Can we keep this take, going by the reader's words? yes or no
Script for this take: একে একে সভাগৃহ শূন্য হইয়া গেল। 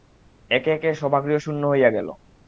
yes